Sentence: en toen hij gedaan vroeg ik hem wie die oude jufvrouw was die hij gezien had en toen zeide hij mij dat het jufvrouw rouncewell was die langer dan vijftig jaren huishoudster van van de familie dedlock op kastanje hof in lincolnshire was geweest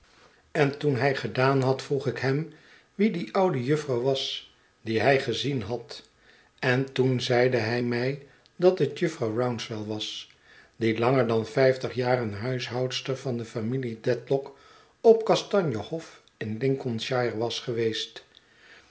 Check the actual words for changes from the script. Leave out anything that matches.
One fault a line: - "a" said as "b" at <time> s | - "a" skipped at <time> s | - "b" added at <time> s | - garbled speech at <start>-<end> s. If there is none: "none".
- "had" added at 1.6 s
- "van" skipped at 13.4 s